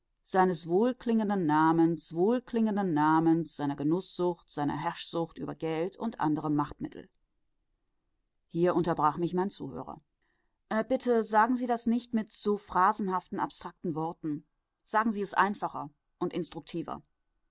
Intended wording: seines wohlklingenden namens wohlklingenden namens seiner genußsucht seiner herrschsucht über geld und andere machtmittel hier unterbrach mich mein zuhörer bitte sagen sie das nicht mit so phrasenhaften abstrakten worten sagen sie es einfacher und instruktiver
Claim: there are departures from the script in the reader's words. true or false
false